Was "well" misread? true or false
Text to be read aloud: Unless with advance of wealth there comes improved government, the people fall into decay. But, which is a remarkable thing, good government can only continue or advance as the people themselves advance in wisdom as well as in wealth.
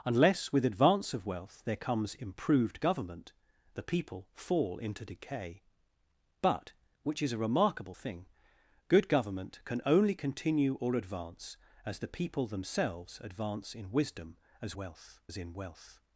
true